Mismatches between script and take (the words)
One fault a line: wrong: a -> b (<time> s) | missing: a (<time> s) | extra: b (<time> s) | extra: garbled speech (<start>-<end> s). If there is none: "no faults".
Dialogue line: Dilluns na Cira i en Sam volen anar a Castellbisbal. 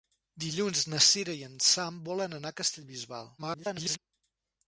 extra: garbled speech (3.4-4.0 s)